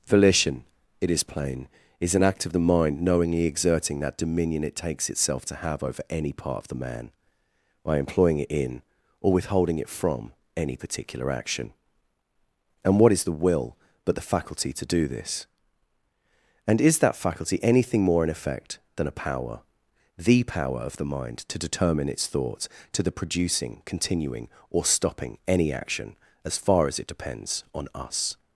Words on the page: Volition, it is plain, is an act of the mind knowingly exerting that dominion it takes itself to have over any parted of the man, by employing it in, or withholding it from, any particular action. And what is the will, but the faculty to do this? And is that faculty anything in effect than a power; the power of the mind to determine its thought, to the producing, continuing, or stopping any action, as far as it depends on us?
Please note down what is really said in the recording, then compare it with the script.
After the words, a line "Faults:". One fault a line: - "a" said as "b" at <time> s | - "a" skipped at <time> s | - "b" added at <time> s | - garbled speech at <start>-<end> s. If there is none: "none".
Volition, it is plain, is an act of the mind knowingly exerting that dominion it takes itself to have over any part of the man, by employing it in, or withholding it from, any particular action. And what is the will, but the faculty to do this? And is that faculty anything more in effect than a power; the power of the mind to determine its thought, to the producing, continuing, or stopping any action, as far as it depends on us?
Faults:
- "parted" said as "part" at 6.3 s
- "more" added at 18.0 s